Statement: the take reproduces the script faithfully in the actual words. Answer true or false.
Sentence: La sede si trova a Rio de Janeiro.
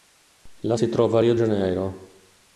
false